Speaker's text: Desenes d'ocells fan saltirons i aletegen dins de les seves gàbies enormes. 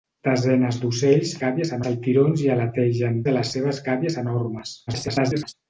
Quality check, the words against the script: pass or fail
fail